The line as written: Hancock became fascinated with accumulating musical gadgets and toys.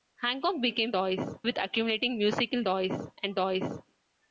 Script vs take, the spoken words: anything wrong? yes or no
yes